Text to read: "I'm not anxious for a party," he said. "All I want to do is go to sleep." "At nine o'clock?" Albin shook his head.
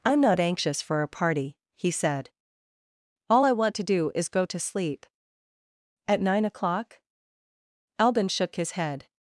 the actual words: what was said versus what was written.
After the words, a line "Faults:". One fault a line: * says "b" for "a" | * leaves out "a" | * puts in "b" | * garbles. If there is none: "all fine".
"I'm not anxious for a party," he said. "All I want to do is go to sleep." "At nine o'clock?" Albin shook his head.
Faults:
all fine